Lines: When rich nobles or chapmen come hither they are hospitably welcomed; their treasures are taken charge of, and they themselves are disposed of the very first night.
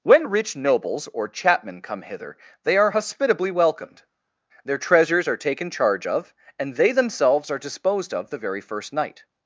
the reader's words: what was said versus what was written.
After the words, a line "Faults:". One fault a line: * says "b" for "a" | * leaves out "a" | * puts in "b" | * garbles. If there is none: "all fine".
When rich nobles or chapmen come hither they are hospitably welcomed; their treasures are taken charge of, and they themselves are disposed of the very first night.
Faults:
all fine